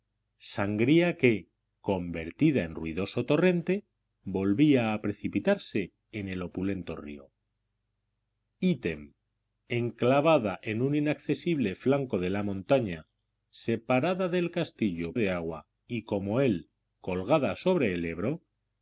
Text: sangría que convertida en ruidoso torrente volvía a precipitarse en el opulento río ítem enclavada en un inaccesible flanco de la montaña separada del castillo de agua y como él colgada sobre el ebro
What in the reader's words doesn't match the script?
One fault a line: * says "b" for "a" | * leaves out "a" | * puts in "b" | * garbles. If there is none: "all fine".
all fine